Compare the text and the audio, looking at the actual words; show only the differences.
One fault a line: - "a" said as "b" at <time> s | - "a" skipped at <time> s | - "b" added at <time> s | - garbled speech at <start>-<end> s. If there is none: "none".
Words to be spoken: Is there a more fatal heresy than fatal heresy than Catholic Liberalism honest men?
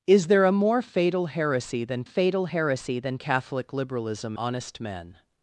none